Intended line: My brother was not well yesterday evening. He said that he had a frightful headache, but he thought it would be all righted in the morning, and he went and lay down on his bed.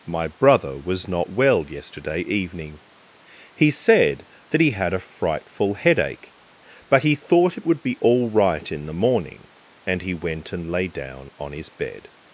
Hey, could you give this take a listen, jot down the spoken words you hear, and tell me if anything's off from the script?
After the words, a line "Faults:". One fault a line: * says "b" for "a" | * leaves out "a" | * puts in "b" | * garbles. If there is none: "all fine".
My brother was not well yesterday evening. He said that he had a frightful headache, but he thought it would be all right in the morning, and he went and lay down on his bed.
Faults:
* says "right" for "righted"